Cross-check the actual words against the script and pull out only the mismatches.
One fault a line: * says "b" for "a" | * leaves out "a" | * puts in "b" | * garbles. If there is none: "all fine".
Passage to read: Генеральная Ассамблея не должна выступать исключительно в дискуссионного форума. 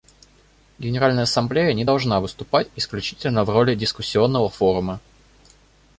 * puts in "роли"